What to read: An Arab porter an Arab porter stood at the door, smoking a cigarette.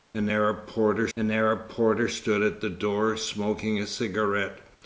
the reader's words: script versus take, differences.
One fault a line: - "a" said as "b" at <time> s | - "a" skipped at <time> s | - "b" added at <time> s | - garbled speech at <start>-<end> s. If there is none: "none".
none